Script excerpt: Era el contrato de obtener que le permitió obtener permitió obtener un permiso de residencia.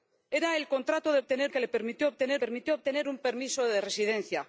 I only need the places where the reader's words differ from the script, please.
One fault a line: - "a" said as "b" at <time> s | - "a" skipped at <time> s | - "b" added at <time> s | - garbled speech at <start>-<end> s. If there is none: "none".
none